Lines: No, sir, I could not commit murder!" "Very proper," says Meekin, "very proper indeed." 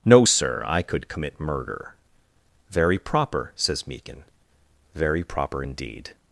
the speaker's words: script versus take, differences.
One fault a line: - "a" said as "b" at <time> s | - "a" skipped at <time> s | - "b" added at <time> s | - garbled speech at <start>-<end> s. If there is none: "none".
- "not" skipped at 1.1 s